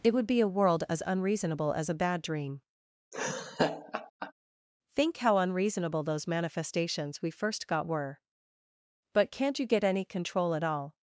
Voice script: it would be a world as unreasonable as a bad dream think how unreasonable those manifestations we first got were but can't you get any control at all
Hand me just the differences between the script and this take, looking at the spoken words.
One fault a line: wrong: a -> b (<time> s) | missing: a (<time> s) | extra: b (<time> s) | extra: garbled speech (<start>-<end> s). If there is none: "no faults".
no faults